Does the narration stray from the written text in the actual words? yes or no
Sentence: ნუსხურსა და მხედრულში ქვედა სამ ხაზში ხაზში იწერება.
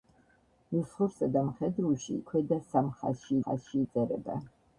no